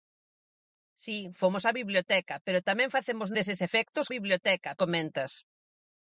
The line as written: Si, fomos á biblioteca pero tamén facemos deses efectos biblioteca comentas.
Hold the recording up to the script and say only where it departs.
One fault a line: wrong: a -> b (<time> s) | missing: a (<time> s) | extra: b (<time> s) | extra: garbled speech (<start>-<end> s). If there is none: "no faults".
no faults